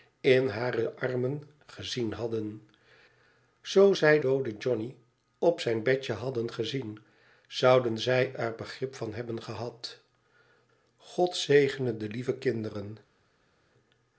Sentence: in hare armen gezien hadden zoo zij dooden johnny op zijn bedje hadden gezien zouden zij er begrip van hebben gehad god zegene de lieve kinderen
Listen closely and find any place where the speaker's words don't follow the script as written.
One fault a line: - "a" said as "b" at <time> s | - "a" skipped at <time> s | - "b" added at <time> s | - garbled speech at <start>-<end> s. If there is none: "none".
none